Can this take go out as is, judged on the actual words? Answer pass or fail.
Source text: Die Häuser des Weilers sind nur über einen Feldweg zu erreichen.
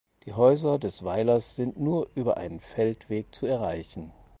pass